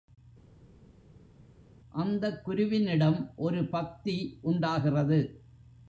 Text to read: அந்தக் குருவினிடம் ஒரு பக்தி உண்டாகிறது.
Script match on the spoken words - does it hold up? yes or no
yes